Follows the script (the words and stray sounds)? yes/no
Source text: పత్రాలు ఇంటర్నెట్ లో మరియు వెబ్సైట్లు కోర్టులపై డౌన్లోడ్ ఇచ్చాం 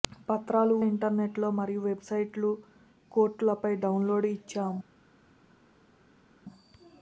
yes